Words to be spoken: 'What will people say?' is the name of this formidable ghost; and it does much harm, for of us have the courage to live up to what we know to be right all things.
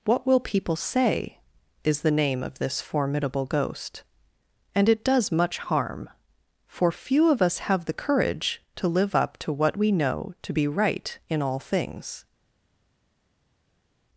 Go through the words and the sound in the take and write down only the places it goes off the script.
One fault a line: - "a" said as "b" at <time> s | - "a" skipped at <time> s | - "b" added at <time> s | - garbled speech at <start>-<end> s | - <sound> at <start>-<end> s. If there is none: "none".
- "few" added at 6.9 s
- "in" added at 11.3 s